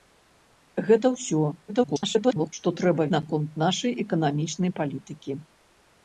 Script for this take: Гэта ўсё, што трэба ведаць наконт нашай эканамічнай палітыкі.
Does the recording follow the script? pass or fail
fail